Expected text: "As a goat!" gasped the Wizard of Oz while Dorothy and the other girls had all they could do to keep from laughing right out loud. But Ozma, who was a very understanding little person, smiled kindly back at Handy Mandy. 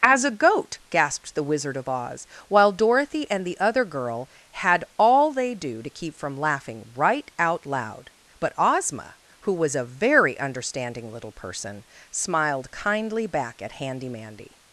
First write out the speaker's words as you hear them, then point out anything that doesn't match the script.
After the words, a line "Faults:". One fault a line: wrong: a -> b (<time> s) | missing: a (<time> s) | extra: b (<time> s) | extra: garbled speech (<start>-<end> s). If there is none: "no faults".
"As a goat!" gasped the Wizard of Oz while Dorothy and the other girl had all they do to keep from laughing right out loud. But Ozma, who was a very understanding little person, smiled kindly back at Handy Mandy.
Faults:
wrong: girls -> girl (3.9 s)
missing: could (5.5 s)